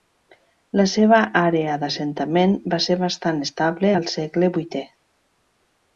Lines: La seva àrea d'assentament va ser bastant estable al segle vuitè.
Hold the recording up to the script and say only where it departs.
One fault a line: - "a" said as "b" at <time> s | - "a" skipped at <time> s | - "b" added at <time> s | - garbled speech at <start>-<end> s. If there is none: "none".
none